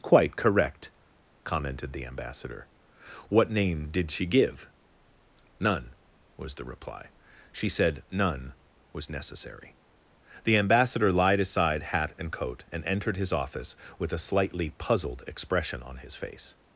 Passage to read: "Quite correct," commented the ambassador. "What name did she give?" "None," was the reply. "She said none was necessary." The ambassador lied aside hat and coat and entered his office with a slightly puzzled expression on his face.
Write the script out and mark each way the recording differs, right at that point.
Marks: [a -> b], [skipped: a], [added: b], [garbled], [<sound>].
"Quite correct," commented the ambassador. "What name did she give?" "None," was the reply. "She said none was necessary." The ambassador lied aside hat and coat and entered his office with a slightly puzzled expression on his face.